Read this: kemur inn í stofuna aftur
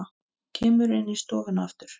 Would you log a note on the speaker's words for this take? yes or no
no